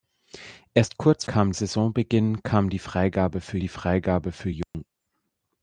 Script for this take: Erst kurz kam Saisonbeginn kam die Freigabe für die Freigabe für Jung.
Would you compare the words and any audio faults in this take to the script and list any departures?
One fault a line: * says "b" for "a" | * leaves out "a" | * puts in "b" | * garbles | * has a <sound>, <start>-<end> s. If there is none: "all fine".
* has a dropout, 4.6-4.7 s